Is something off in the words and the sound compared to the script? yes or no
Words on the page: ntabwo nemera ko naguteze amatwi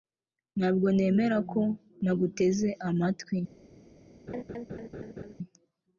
yes